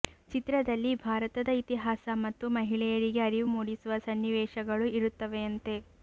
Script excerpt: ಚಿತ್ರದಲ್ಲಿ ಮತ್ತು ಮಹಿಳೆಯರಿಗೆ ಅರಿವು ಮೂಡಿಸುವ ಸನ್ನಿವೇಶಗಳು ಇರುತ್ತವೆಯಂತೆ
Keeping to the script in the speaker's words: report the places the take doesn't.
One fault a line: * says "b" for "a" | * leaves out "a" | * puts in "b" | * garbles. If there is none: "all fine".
* puts in "ಭಾರತದ ಇತಿಹಾಸ"